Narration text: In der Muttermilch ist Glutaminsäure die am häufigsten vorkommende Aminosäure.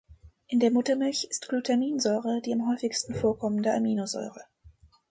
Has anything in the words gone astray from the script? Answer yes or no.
no